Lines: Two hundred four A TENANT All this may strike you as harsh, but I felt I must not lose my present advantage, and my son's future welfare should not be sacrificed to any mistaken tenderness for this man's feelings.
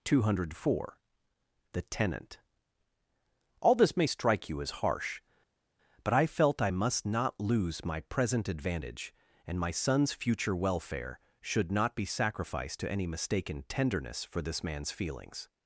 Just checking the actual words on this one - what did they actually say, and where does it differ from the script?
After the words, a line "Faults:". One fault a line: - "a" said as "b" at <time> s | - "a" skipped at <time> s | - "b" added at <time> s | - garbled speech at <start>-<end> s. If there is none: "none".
Two hundred four THE TENANT All this may strike you as harsh, but I felt I must not lose my present advantage, and my son's future welfare should not be sacrificed to any mistaken tenderness for this man's feelings.
Faults:
- "A" said as "THE" at 1.7 s